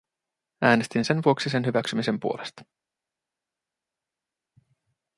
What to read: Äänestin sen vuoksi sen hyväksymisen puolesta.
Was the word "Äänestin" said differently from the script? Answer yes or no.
no